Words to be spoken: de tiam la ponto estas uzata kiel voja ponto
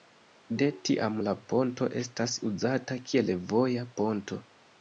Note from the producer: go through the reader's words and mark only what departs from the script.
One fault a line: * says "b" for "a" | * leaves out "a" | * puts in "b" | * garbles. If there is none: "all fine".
all fine